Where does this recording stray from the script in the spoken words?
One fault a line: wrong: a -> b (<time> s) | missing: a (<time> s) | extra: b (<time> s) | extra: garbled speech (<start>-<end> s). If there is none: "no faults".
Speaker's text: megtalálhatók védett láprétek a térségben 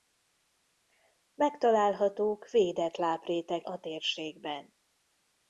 no faults